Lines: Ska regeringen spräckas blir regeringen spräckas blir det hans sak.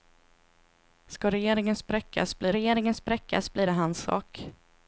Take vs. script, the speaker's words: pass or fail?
pass